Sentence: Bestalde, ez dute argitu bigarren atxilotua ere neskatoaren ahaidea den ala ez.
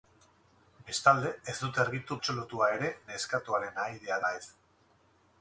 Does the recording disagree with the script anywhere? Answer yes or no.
yes